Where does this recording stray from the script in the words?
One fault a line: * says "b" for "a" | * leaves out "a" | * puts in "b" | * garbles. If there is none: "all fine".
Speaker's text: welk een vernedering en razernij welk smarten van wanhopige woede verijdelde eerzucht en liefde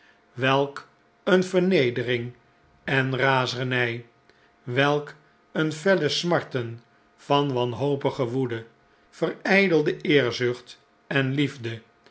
* puts in "een felle"